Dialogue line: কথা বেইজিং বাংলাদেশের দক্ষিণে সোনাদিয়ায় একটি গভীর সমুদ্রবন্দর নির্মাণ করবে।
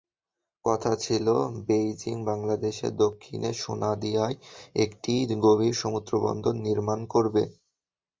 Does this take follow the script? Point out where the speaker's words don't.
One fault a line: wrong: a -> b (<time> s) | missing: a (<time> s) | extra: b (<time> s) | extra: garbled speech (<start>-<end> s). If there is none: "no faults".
extra: ছিল (1.0 s)